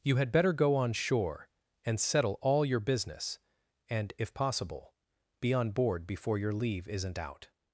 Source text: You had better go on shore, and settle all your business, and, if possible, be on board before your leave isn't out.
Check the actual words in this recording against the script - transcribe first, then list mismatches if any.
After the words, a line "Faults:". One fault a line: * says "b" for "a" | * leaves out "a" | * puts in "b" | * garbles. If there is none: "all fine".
You had better go on shore, and settle all your business, and, if possible, be on board before your leave isn't out.
Faults:
all fine